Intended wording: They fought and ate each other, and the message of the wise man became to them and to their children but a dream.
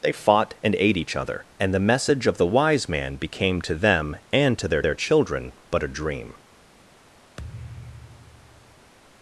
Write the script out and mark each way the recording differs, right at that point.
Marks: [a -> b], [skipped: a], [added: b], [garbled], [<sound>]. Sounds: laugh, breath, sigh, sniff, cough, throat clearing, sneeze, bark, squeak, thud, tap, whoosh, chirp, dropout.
They fought and ate each other, and the message of the wise man became to them and to their [added: their] children but a dream. [thud]